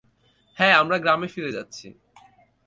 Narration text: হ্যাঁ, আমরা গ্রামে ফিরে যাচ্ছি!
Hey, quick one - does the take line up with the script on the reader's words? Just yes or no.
yes